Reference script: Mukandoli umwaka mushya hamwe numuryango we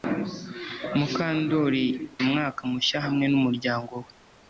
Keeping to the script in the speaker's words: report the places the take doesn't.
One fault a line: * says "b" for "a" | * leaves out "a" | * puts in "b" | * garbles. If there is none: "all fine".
all fine